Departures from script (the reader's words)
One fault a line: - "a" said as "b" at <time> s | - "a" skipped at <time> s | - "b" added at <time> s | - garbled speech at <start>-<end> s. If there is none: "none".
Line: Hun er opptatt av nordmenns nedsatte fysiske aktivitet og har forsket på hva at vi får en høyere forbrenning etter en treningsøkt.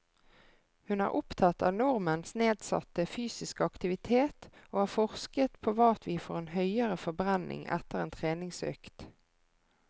none